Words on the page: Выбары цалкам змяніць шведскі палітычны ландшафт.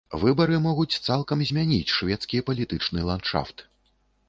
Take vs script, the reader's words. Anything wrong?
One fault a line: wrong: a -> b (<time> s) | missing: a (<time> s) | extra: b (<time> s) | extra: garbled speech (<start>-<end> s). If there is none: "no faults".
extra: могуць (0.7 s)